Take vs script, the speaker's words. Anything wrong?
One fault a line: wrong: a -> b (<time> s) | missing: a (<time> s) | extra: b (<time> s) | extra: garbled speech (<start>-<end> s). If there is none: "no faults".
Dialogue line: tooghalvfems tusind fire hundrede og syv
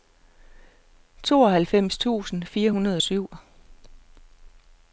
no faults